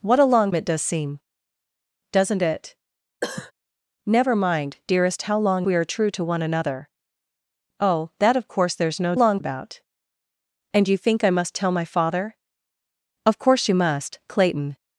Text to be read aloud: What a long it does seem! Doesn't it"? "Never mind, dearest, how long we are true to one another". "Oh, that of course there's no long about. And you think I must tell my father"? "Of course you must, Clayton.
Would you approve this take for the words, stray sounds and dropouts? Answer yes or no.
no